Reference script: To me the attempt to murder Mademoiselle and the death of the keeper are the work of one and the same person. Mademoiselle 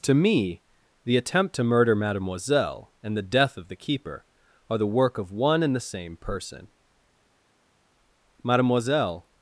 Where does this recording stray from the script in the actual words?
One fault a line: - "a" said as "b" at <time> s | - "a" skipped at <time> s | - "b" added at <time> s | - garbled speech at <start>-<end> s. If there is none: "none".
none